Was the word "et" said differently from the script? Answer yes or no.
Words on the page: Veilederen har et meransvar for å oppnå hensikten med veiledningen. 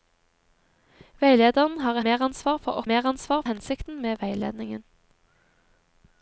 yes